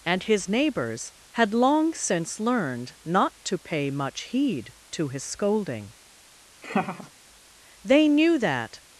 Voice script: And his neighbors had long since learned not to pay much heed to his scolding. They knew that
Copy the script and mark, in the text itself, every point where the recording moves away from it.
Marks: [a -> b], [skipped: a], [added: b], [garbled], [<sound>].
And his neighbors had long since learned not to pay much heed to his scolding. [laugh] They knew that